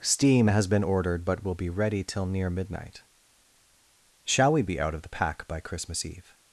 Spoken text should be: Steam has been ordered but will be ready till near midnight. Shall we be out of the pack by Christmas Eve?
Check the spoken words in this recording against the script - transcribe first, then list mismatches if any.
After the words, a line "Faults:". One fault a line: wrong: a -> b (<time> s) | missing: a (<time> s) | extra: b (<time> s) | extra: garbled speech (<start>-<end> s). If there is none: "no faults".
Steam has been ordered but will be ready till near midnight. Shall we be out of the pack by Christmas Eve?
Faults:
no faults